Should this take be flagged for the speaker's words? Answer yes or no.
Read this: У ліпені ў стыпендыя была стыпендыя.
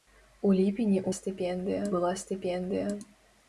no